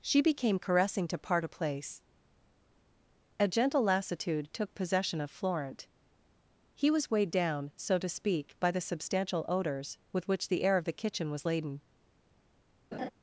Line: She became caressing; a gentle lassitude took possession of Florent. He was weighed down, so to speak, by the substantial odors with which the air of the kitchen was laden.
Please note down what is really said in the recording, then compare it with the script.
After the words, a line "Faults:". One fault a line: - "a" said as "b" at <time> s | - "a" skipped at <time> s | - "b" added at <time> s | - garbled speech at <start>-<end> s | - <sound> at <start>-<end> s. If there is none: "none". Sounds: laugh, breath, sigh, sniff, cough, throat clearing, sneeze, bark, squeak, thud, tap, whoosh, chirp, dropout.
She became caressing; to part a place a gentle lassitude took possession of Florent. He was weighed down, so to speak, by the substantial odors with which the air of the kitchen was laden.
Faults:
- "to part a place" added at 1.1 s
- laugh at 12.9-13.1 s